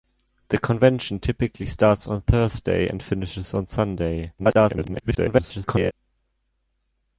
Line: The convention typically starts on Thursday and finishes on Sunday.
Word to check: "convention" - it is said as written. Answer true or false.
true